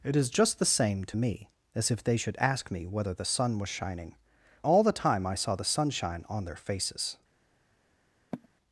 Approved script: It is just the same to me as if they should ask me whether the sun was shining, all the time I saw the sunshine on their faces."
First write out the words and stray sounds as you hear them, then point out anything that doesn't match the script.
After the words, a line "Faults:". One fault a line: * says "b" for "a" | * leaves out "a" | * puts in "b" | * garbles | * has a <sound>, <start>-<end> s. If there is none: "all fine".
It is just the same to me as if they should ask me whether the sun was shining, all the time I saw the sunshine on their faces."
Faults:
* has a sigh, 8.3-8.5 s